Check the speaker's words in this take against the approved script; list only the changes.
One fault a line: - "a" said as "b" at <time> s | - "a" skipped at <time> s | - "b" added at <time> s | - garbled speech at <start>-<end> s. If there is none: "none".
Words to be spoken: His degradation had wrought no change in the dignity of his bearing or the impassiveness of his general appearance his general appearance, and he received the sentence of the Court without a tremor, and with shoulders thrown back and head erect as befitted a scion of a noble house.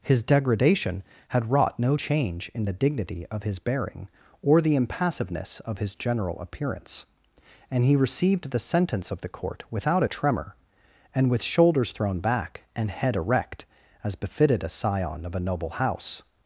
- "his general appearance" skipped at 7.0 s